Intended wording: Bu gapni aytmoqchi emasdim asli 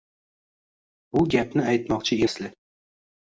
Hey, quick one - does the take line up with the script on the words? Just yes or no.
no